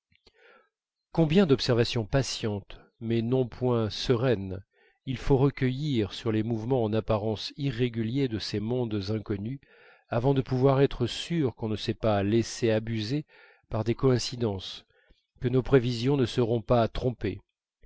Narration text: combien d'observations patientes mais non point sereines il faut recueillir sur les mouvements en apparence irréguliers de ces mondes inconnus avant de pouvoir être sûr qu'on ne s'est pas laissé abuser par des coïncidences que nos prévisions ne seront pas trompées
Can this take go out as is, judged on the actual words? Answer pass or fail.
pass